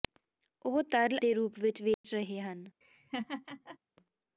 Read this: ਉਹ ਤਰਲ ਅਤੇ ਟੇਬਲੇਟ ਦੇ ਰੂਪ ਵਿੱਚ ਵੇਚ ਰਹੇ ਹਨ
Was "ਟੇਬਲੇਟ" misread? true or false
true